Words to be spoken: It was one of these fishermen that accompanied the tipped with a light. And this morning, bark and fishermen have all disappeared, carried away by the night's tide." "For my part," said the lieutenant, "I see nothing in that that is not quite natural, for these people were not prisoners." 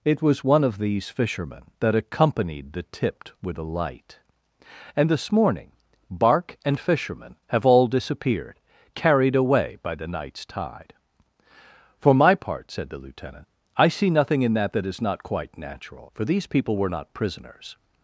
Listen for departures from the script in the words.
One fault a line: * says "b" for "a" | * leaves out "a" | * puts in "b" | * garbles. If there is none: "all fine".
all fine